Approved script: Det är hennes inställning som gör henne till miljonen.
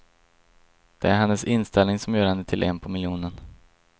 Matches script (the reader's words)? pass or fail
fail